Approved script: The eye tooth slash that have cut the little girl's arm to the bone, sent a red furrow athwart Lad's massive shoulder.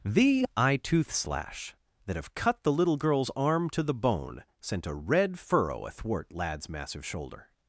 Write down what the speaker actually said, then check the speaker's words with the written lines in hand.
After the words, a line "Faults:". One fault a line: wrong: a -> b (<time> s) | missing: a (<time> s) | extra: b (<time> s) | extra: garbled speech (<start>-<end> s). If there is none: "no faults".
The eye tooth slash that have cut the little girl's arm to the bone, sent a red furrow athwart Lad's massive shoulder.
Faults:
no faults